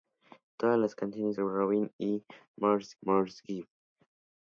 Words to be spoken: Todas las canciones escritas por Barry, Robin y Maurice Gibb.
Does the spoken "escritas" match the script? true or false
false